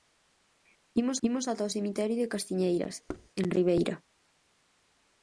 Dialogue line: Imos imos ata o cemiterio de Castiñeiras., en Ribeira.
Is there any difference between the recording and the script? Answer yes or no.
no